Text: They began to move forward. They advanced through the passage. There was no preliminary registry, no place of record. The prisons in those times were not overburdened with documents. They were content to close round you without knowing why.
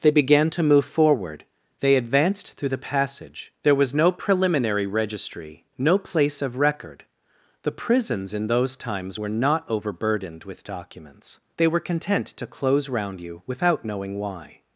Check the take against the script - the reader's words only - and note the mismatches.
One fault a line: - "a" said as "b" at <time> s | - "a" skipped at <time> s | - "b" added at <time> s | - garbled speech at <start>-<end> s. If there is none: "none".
none